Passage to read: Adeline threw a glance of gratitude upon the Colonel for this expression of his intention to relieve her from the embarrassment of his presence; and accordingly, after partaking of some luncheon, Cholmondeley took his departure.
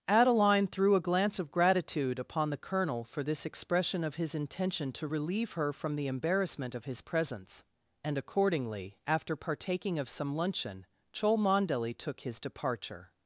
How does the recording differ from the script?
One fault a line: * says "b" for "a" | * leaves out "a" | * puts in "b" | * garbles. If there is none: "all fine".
all fine